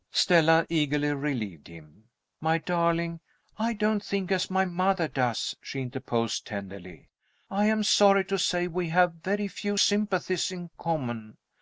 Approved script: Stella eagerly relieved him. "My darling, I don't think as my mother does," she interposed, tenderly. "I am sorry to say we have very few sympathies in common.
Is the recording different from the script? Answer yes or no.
no